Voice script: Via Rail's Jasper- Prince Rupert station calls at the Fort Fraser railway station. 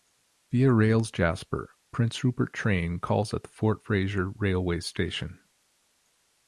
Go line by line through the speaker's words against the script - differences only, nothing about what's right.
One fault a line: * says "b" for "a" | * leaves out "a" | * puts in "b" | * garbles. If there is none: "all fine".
* says "train" for "station"